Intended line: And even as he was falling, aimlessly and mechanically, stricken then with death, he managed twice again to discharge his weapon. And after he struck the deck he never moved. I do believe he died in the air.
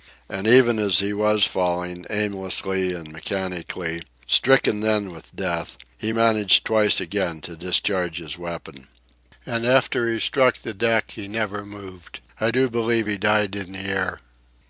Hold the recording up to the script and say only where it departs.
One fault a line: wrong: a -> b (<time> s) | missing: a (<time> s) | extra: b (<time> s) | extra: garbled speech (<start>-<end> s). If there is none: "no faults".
no faults